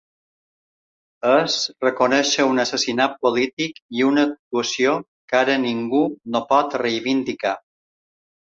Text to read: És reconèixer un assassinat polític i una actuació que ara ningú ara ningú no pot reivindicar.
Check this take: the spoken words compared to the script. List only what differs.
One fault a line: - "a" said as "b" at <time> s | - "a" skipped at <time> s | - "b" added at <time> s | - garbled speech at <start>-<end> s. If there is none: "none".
- "ara ningú" skipped at 6.1 s